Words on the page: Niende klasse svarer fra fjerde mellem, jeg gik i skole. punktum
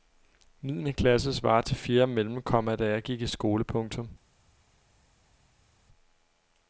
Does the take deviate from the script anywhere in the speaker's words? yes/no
yes